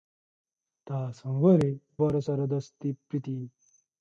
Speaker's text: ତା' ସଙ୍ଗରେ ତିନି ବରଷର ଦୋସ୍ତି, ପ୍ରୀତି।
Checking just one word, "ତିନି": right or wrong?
wrong